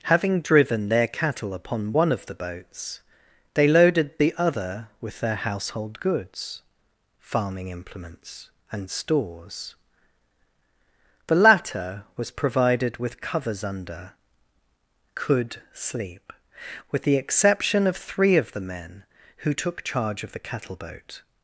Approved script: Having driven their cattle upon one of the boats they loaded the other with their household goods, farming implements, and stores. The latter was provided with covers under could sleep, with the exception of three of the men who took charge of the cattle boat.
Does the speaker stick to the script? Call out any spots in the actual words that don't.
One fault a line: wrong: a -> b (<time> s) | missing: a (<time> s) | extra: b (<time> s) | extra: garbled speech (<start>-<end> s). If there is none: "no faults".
no faults